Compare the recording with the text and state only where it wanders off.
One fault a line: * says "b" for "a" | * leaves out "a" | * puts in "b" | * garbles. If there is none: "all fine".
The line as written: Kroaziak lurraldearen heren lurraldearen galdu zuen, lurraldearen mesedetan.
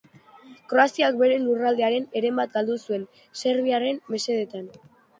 * puts in "bere"
* says "bat" for "lurraldearen"
* says "serbiarren" for "lurraldearen"